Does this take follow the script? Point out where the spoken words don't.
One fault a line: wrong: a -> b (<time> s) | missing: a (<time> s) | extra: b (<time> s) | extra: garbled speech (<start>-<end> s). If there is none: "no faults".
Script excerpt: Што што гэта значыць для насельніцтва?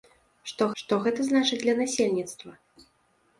no faults